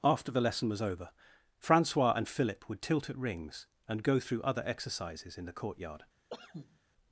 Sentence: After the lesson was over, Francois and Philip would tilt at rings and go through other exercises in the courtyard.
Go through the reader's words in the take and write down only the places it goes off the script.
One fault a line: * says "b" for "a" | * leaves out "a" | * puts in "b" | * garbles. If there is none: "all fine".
all fine